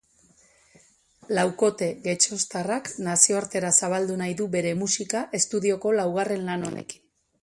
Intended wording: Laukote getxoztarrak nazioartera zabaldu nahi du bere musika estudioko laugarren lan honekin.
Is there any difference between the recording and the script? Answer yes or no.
no